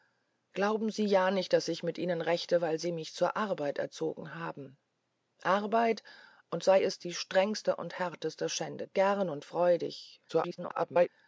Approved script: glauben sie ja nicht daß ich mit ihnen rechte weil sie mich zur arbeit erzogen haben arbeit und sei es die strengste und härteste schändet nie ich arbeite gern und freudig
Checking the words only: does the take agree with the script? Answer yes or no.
no